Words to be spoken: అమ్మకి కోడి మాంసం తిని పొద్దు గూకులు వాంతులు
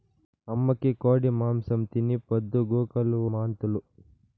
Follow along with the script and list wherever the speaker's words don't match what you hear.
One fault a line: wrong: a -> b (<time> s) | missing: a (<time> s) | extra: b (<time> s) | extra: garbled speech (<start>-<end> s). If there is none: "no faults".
no faults